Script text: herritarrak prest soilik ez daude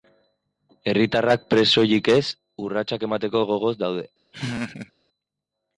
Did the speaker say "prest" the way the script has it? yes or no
yes